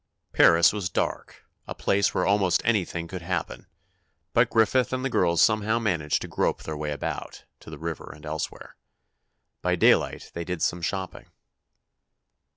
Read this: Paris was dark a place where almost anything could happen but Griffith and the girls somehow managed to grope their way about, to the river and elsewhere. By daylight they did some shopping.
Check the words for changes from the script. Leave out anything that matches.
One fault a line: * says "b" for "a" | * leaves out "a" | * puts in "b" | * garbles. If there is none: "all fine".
all fine